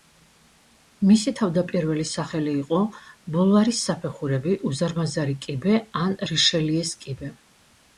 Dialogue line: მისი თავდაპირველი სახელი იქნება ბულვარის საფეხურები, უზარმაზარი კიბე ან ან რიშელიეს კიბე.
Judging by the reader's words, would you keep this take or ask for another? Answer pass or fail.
fail